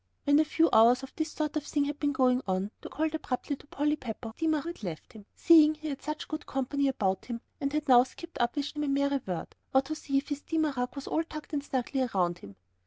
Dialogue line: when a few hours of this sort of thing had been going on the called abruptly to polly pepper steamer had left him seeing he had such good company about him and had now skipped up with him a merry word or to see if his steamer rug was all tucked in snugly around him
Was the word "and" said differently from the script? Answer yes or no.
no